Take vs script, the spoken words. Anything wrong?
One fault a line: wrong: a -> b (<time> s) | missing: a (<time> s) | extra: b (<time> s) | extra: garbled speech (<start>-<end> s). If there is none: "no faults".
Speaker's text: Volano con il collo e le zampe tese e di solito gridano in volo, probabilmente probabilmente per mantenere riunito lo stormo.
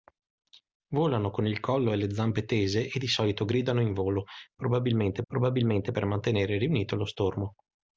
no faults